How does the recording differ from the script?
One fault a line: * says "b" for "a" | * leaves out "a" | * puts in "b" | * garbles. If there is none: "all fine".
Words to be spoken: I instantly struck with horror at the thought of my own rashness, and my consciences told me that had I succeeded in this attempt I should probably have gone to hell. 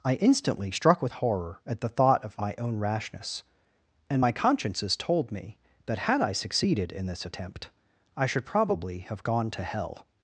all fine